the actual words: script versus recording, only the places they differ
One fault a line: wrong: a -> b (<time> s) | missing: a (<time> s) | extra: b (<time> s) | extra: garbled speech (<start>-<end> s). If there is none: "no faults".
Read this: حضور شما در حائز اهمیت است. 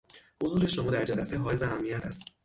extra: جلسه (1.0 s)